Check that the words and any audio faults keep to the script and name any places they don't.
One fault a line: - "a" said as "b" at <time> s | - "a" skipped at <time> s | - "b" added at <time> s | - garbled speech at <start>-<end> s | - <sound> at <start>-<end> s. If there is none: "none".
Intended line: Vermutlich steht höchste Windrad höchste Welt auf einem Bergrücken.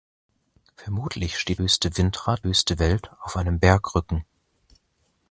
none